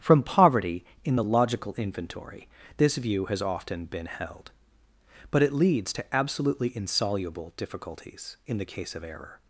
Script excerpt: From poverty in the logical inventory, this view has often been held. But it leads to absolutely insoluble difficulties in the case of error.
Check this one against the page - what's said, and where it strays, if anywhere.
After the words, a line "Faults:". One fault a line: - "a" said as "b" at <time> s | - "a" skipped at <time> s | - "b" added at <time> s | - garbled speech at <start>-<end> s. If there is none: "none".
From poverty in the logical inventory, this view has often been held. But it leads to absolutely insoluble difficulties in the case of error.
Faults:
none